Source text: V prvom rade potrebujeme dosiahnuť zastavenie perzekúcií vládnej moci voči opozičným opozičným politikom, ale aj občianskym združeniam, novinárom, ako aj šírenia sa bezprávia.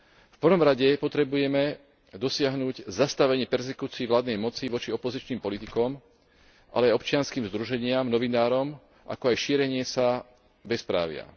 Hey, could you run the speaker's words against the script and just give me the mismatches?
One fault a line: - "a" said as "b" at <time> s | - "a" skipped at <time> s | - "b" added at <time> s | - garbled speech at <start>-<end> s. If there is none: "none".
- "opozičným" skipped at 5.4 s